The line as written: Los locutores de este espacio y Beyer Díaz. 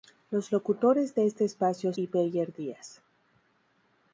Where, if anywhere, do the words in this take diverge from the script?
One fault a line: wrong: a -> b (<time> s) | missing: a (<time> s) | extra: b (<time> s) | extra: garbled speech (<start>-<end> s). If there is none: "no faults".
no faults